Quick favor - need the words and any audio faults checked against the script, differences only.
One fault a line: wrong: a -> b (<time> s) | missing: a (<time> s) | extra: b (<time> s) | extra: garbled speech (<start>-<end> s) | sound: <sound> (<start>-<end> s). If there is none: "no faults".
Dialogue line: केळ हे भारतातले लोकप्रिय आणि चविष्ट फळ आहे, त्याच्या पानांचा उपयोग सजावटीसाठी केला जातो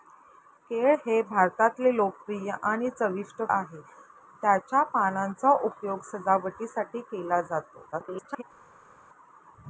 missing: फळ (3.4 s)
extra: garbled speech (7.9-8.4 s)